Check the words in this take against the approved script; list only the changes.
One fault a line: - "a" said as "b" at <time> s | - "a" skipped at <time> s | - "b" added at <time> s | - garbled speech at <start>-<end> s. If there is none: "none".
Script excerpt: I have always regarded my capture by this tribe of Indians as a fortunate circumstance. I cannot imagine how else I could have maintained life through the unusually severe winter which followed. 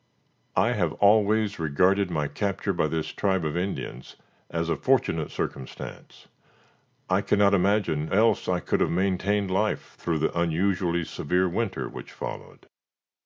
- "how" skipped at 8.1 s